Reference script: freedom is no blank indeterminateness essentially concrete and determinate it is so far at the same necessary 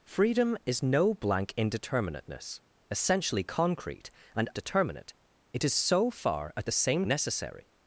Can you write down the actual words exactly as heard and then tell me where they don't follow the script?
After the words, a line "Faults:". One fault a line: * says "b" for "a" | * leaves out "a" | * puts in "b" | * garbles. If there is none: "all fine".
freedom is no blank indeterminateness essentially concrete and determinate it is so far at the same necessary
Faults:
all fine